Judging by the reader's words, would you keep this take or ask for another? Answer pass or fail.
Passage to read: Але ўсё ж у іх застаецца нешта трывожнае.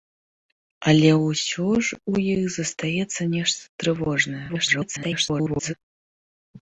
fail